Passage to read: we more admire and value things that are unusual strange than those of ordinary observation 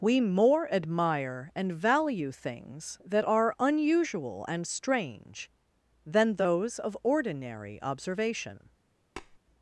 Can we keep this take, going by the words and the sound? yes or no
no